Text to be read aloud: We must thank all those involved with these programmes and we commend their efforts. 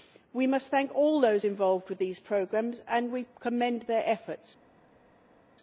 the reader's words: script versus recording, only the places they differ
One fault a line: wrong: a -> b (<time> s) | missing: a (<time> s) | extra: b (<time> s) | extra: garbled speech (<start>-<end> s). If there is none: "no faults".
no faults